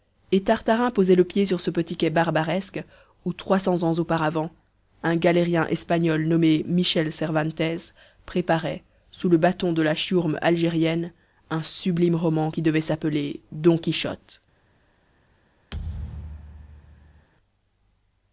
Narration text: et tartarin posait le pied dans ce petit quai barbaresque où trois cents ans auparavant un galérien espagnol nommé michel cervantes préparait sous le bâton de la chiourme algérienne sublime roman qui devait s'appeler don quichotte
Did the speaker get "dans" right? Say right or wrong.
wrong